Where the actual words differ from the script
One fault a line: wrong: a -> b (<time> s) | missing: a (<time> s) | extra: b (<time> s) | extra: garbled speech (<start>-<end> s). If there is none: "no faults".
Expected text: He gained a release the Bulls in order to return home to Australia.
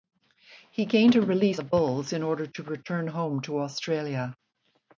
no faults